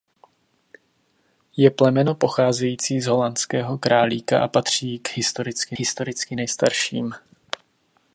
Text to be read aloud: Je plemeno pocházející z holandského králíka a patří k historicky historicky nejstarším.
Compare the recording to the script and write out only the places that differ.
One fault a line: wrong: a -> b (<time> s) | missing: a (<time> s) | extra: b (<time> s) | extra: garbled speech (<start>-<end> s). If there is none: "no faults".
no faults